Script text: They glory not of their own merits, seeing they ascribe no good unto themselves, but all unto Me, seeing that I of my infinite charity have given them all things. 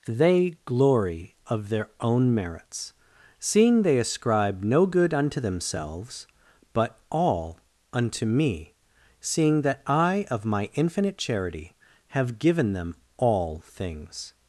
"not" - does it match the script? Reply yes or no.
no